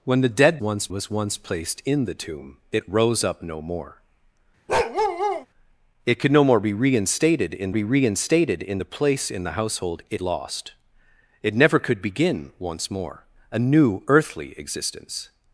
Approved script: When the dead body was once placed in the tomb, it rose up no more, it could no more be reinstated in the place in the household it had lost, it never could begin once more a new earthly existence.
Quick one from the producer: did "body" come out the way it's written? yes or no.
no